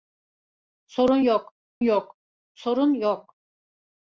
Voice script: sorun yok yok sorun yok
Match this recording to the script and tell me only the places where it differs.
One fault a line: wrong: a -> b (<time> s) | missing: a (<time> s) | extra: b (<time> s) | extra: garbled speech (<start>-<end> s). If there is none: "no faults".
no faults